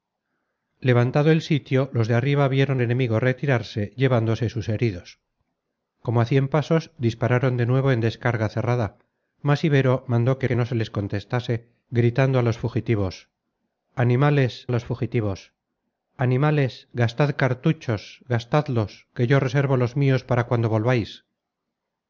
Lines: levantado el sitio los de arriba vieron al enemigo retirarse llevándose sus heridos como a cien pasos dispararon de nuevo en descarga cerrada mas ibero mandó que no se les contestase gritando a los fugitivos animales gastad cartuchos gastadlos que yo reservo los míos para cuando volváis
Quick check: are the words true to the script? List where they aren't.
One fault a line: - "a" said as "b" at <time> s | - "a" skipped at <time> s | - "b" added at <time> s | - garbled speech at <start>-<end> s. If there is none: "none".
- "al" skipped at 2.8 s
- "que" added at 10.4 s
- "los fugitivos animales" added at 14.7 s